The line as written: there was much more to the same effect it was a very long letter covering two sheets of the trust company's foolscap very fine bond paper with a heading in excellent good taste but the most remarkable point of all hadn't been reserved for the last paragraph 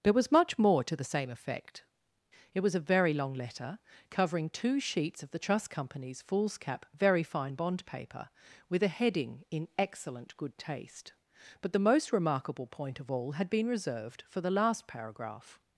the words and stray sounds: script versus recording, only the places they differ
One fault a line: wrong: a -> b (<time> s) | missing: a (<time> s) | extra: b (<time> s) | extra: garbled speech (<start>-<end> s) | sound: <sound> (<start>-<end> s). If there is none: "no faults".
wrong: hadn't -> had (13.3 s)